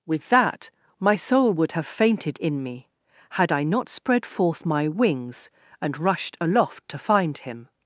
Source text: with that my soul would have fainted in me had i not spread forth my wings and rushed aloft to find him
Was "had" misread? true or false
false